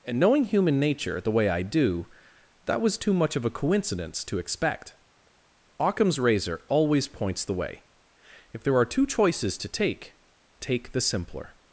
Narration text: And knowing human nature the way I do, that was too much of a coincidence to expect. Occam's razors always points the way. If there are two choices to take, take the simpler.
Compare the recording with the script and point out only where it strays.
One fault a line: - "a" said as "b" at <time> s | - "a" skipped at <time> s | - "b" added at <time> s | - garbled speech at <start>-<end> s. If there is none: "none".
- "razors" said as "razor" at 6.2 s